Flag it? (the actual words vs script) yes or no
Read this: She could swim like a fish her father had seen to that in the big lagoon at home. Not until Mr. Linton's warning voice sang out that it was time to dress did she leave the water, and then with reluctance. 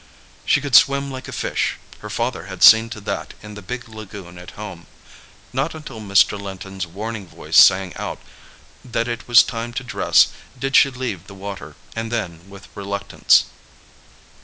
no